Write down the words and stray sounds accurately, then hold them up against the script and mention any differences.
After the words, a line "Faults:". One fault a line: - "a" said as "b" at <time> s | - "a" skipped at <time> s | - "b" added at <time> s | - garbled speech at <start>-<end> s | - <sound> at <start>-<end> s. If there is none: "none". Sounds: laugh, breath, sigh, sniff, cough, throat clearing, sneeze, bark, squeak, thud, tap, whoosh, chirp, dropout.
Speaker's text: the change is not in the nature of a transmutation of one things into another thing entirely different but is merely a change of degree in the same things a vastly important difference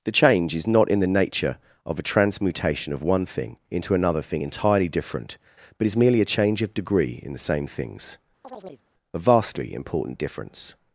the change is not in the nature of a transmutation of one thing into another thing entirely different but is merely a change of degree in the same things a vastly important difference
Faults:
- "things" said as "thing" at 3.3 s
- chirp at 8.4-8.9 s